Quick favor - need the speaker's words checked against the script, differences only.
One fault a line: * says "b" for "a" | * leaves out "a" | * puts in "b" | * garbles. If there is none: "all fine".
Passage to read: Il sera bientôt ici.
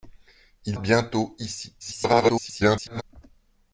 * leaves out "sera"
* garbles